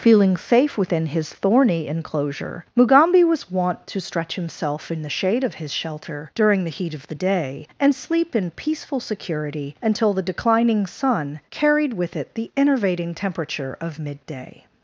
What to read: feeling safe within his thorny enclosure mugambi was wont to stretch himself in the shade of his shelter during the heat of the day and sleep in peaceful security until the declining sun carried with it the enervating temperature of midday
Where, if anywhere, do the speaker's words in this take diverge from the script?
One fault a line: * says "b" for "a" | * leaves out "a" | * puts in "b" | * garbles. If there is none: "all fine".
all fine